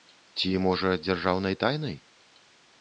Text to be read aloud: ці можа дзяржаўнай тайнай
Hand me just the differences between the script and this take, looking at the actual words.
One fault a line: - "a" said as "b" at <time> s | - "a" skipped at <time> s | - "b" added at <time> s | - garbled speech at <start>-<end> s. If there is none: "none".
none